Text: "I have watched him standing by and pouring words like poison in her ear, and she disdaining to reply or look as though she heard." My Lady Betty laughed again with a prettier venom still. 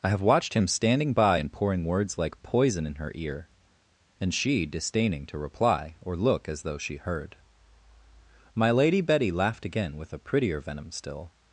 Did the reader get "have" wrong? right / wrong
right